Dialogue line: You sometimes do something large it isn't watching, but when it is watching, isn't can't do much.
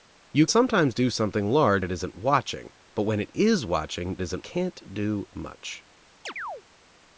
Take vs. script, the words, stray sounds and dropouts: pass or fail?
fail